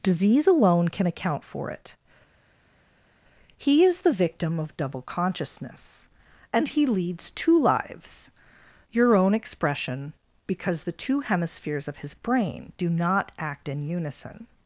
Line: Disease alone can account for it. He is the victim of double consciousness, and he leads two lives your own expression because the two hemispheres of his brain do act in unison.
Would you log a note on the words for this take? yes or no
yes